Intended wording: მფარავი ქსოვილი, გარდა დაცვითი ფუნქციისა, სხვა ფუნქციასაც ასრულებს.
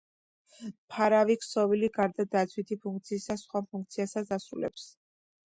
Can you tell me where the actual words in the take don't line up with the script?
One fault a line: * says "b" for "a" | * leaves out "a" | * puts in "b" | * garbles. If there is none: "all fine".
all fine